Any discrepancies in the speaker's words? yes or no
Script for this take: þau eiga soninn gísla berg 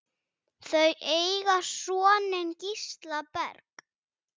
no